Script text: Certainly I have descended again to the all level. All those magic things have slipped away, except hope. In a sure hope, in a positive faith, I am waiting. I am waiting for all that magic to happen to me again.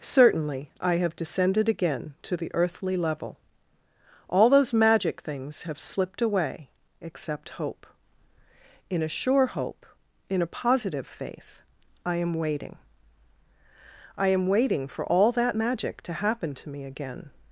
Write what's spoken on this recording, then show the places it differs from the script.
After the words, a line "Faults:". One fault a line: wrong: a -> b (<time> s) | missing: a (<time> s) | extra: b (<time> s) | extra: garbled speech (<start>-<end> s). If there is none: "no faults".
Certainly I have descended again to the earthly level. All those magic things have slipped away, except hope. In a sure hope, in a positive faith, I am waiting. I am waiting for all that magic to happen to me again.
Faults:
wrong: all -> earthly (2.5 s)